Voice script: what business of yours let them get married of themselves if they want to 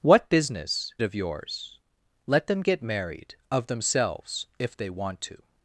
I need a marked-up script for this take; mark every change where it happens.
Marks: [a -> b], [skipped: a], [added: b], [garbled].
what business of yours let them get married of themselves if they want to